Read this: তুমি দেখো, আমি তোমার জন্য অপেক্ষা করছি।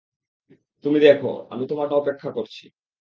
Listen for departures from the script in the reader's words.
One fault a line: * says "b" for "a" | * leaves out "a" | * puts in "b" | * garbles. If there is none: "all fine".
* leaves out "জন্য"